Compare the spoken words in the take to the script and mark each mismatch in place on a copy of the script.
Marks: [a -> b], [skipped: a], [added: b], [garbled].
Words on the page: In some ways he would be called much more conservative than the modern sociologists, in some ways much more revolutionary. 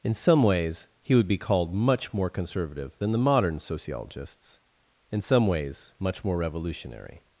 In some ways he would be called much more conservative than the modern sociologists, in some ways much more revolutionary.